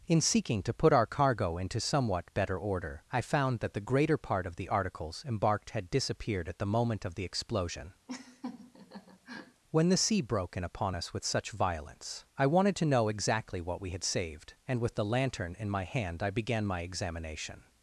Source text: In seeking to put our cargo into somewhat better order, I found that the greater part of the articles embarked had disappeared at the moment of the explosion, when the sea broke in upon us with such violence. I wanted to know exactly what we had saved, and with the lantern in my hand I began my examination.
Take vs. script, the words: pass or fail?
pass